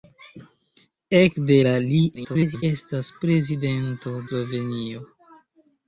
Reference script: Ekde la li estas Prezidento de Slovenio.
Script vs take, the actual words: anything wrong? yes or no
yes